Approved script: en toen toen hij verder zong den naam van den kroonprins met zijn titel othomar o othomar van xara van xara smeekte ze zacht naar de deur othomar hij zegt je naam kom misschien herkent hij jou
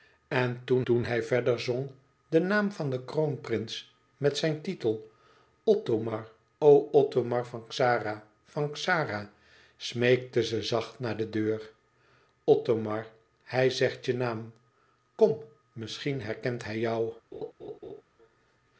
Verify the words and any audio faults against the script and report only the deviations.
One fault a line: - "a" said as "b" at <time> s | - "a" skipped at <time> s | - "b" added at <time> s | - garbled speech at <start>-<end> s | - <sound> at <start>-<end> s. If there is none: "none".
- laugh at 17.3-18.0 s